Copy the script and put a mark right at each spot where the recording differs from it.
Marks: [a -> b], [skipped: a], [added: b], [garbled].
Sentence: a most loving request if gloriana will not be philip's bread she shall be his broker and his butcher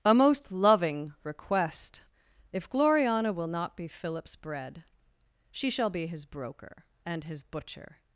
a most loving request if gloriana will not be philip's bread she shall be his broker and his butcher